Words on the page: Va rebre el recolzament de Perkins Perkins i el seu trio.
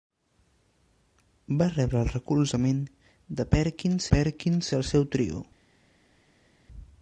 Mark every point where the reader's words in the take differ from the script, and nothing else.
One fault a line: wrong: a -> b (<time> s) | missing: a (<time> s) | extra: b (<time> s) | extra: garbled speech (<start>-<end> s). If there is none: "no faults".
no faults